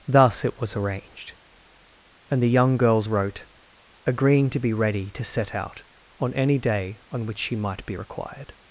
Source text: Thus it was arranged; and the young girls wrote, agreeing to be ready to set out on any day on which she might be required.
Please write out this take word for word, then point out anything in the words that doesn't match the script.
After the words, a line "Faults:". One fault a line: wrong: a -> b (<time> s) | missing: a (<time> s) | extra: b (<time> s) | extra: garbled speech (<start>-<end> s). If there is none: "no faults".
Thus it was arranged; and the young girls wrote, agreeing to be ready to set out on any day on which she might be required.
Faults:
no faults